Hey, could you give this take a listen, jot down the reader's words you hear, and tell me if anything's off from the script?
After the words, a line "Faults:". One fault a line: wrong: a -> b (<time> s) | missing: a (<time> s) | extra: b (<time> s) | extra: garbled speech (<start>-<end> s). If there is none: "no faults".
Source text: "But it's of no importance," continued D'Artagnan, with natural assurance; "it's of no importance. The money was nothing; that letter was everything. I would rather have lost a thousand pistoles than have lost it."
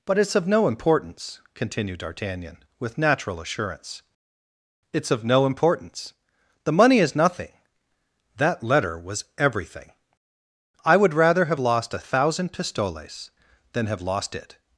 "But it's of no importance," continued D'Artagnan, with natural assurance; "it's of no importance. The money is nothing; that letter was everything. I would rather have lost a thousand pistoles than have lost it."
Faults:
wrong: was -> is (7.0 s)